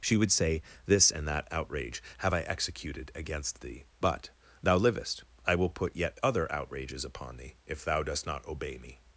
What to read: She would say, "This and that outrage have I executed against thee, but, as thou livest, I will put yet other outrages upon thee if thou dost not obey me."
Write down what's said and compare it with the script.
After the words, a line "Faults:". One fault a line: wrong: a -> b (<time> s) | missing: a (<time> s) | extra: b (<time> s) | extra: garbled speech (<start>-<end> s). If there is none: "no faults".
She would say, "This and that outrage have I executed against thee, but, thou livest, I will put yet other outrages upon thee if thou dost not obey me."
Faults:
missing: as (4.3 s)